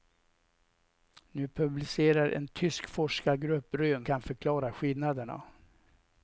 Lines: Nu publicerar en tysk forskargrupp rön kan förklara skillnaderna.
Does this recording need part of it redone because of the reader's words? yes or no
no